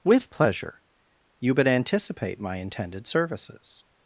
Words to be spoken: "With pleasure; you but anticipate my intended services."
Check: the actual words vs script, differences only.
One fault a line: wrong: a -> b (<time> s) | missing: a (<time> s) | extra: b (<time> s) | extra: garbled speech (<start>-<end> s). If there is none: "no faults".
no faults